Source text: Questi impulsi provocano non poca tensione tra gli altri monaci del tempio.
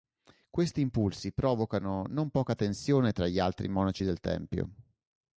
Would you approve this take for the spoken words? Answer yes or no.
yes